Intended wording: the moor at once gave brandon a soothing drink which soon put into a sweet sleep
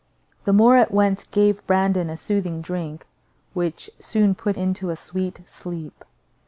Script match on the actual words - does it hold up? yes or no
yes